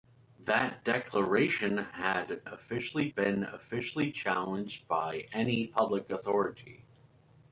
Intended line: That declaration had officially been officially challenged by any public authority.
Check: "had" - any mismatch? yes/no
no